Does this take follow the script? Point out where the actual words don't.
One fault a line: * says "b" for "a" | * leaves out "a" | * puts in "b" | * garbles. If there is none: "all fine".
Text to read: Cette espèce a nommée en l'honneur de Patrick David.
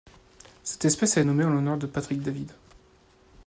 all fine